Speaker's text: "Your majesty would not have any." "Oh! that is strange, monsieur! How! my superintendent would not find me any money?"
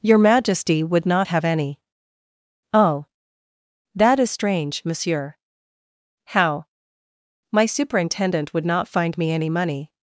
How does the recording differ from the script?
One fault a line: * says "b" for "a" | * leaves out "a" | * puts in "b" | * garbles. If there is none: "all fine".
all fine